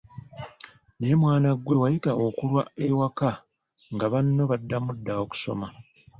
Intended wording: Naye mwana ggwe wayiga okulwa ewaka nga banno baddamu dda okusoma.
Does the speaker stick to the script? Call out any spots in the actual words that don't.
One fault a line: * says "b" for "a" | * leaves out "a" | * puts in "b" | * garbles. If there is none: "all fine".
all fine